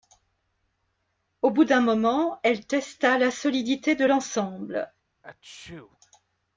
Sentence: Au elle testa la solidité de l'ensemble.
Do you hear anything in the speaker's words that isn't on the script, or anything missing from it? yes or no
yes